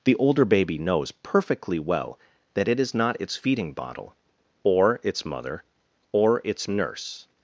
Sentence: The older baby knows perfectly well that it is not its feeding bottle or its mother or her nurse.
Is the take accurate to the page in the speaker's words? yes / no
no